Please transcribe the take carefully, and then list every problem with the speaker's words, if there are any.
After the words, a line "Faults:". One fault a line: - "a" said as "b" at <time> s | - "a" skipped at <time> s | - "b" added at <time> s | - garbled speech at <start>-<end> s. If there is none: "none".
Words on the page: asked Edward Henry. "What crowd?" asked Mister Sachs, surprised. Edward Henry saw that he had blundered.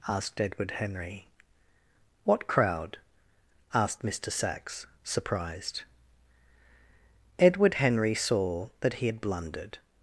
asked Edward Henry. "What crowd?" asked Mister Sachs, surprised. Edward Henry saw that he had blundered.
Faults:
none